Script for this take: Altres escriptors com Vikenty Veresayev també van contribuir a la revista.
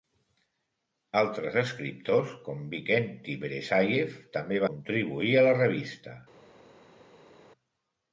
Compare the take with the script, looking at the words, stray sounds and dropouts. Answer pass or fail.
fail